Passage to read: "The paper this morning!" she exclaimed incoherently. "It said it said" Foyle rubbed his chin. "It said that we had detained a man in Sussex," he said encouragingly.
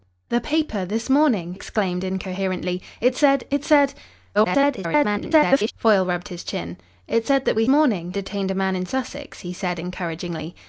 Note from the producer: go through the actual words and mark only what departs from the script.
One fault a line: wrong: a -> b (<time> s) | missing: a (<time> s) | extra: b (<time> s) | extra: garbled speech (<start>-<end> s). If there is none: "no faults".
missing: she (1.5 s)
extra: garbled speech (4.3-5.7 s)
wrong: had -> morning (7.7 s)